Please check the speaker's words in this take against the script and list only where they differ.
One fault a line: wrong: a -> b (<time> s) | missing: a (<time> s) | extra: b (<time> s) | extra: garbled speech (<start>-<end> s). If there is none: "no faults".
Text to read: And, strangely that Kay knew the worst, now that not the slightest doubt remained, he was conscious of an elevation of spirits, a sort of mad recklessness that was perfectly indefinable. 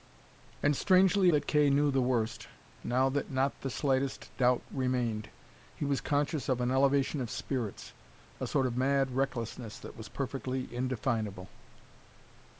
no faults